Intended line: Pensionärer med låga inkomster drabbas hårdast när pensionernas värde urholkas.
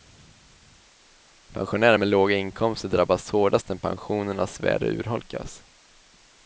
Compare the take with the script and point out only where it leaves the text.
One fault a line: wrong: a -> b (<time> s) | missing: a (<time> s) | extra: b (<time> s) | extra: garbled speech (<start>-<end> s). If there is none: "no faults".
no faults